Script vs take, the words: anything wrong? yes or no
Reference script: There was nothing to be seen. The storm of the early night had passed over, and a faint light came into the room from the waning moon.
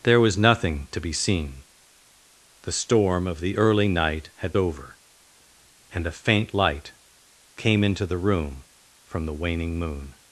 yes